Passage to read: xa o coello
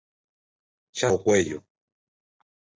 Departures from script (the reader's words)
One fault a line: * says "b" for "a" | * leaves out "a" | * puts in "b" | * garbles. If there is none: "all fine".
all fine